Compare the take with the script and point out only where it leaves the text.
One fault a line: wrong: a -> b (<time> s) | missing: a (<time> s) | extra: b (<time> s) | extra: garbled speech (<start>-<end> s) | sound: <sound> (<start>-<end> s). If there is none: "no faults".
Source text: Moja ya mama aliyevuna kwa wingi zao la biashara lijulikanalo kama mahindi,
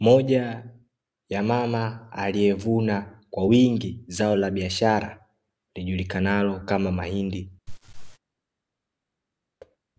sound: laugh (7.7-8.2 s)
sound: thud (9.6-9.8 s)